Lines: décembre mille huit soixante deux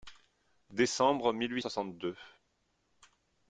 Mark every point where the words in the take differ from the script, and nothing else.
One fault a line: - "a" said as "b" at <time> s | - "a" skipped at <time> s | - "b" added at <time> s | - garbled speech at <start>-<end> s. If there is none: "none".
none